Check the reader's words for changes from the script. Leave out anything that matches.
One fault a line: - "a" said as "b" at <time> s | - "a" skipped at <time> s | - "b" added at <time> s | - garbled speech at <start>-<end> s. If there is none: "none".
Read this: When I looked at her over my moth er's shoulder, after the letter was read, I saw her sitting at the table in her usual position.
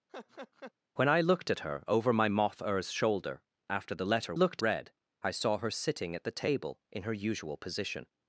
- "was" said as "looked" at 4.3 s